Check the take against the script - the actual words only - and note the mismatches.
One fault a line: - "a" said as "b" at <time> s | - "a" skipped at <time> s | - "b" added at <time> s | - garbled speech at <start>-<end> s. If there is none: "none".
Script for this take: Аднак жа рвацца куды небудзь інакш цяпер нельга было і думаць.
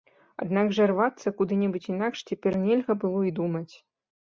none